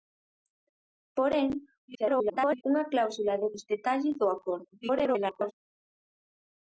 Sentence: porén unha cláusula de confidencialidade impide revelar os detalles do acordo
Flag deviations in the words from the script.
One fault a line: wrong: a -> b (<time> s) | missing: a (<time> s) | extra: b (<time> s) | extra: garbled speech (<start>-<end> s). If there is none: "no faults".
extra: garbled speech (1.9-2.6 s)
missing: confidencialidade impide revelar (3.5 s)
extra: garbled speech (4.8-5.5 s)